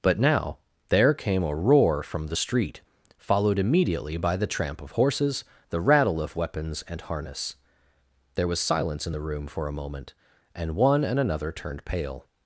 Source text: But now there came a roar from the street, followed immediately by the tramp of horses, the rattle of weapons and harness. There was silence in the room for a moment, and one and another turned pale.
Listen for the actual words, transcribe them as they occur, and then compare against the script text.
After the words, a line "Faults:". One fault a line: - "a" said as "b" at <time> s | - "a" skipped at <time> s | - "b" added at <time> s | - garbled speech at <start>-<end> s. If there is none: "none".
But now there came a roar from the street, followed immediately by the tramp of horses, the rattle of weapons and harness. There was silence in the room for a moment, and one and another turned pale.
Faults:
none